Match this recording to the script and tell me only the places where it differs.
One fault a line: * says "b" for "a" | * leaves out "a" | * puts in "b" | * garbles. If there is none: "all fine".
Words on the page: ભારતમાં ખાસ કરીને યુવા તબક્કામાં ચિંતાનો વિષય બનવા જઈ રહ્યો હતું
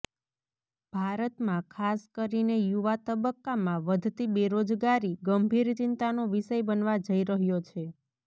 * puts in "વધતી બેરોજગારી ગંભીર"
* says "છે" for "હતું"